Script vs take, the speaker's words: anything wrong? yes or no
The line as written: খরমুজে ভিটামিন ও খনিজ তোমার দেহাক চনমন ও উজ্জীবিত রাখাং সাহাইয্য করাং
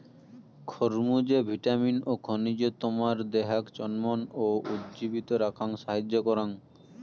no